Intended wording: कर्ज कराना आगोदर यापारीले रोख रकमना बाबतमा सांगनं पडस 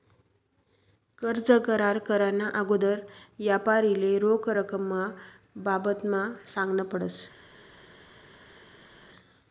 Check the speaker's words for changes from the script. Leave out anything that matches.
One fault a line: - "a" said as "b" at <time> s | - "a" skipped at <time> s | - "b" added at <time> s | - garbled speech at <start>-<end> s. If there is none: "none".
- "करार" added at 1.7 s